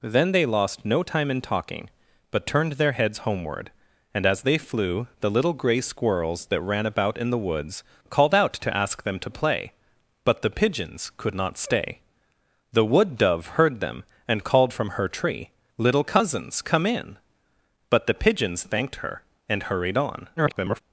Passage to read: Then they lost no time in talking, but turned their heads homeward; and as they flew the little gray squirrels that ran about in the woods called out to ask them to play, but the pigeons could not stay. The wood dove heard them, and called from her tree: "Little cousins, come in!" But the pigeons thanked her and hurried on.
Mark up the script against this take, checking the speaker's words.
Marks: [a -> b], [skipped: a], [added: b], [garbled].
Then they lost no time in talking, but turned their heads homeward; and as they flew the little gray squirrels that ran about in the woods called out to ask them to play, but the pigeons could not stay. The wood dove heard them, and called from her tree: "Little cousins, come in!" But the pigeons thanked her and hurried on. [garbled]